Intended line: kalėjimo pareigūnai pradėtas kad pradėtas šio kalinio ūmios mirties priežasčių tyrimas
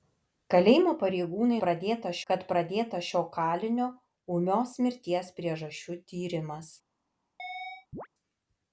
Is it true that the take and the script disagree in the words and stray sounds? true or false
true